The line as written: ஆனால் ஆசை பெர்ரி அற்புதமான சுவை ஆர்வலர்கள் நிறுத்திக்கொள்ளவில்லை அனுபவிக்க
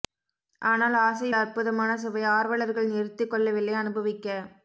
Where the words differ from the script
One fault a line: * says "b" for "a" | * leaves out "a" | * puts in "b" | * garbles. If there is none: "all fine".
* leaves out "பெர்ரி"